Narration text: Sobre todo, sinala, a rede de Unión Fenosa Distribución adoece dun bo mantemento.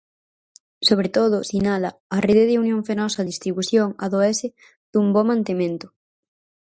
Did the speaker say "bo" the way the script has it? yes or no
yes